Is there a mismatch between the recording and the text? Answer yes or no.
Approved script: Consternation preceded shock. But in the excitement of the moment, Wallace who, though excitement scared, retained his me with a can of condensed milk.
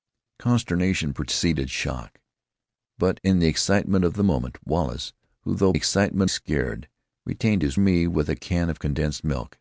no